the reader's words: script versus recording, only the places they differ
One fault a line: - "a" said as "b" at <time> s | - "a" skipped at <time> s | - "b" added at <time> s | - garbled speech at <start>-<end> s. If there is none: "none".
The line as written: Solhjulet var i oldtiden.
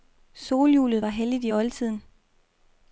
- "helligt" added at 1.1 s